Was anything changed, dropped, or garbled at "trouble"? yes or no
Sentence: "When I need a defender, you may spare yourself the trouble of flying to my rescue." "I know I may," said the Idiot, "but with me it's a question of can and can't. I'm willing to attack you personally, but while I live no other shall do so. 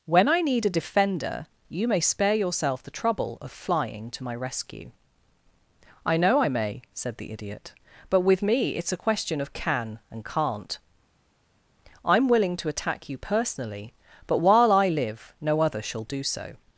no